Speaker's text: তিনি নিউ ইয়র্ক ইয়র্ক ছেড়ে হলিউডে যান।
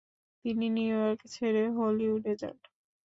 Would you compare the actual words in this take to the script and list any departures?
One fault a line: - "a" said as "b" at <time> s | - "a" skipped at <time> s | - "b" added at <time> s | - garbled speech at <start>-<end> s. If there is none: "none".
- "ইয়র্ক" skipped at 1.2 s